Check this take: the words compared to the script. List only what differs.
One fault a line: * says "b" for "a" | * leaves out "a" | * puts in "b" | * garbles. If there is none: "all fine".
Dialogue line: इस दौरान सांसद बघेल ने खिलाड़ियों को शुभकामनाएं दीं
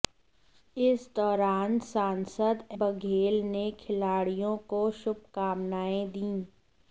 all fine